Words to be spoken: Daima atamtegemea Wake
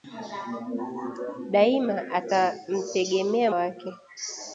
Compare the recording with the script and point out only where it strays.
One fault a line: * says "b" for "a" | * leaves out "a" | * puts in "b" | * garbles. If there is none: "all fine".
all fine